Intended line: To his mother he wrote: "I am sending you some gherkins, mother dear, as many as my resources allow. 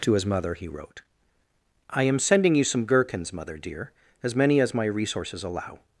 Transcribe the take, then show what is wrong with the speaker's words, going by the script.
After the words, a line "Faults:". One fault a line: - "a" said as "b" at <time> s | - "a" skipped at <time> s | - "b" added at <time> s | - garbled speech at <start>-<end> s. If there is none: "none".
To his mother he wrote: "I am sending you some gherkins, mother dear, as many as my resources allow.
Faults:
none